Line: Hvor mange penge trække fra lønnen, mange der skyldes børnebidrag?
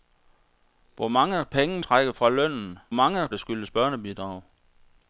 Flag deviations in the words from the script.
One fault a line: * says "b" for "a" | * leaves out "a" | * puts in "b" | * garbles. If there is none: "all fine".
all fine